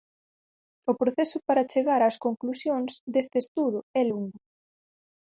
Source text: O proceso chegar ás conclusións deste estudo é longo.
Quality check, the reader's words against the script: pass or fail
fail